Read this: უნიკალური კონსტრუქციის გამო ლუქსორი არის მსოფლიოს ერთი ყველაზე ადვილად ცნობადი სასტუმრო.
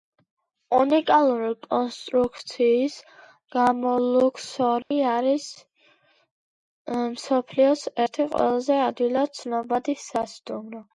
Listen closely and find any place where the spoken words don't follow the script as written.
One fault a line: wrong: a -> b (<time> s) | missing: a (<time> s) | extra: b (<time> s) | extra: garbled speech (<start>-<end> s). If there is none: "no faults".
no faults